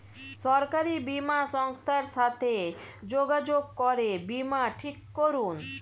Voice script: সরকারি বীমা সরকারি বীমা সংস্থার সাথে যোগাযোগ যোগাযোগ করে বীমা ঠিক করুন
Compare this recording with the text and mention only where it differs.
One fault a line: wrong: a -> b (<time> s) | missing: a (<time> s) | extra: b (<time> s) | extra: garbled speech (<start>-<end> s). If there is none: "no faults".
missing: সরকারি বীমা (1.4 s)
missing: যোগাযোগ (3.6 s)